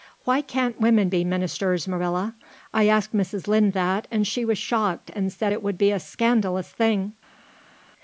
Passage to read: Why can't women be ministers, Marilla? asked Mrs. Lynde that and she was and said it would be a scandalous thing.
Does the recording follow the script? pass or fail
fail